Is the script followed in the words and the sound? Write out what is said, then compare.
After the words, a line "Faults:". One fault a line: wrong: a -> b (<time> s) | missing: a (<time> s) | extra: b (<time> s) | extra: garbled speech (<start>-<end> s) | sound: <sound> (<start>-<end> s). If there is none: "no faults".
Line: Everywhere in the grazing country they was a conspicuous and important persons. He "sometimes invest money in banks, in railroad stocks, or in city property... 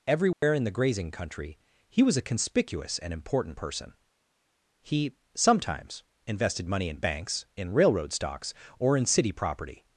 Everywhere in the grazing country he was a conspicuous and important person. He "sometimes invested money in banks, in railroad stocks, or in city property...
Faults:
sound: dropout (0.3-0.4 s)
wrong: they -> he (1.9 s)
wrong: persons -> person (3.6 s)
wrong: invest -> invested (6.3 s)